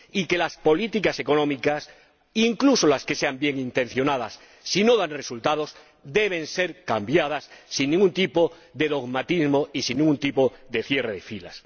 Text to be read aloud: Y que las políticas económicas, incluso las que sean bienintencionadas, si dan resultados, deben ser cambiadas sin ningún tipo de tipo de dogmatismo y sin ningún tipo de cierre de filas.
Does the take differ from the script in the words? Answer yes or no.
yes